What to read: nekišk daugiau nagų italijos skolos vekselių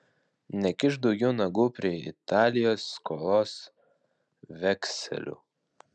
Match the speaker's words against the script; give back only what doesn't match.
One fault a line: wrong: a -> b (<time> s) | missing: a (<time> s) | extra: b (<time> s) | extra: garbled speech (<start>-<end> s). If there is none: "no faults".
extra: prie (1.8 s)